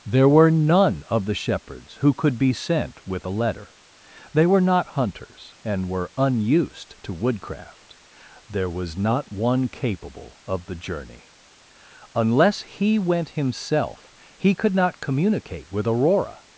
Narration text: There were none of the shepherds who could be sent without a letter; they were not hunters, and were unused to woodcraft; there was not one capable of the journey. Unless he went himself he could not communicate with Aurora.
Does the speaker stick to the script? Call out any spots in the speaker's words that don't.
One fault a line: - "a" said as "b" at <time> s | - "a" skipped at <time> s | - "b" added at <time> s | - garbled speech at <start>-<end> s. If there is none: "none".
- "without" said as "with" at 3.1 s